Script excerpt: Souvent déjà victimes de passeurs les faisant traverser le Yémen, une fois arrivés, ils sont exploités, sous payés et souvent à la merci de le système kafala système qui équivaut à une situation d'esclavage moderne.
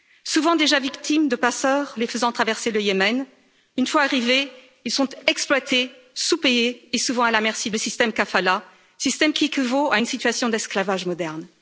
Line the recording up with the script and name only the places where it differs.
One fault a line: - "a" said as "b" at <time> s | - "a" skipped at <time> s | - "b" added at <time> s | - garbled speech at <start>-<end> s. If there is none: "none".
none